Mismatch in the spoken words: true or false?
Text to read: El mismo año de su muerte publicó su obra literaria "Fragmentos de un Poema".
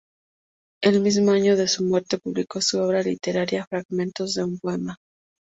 false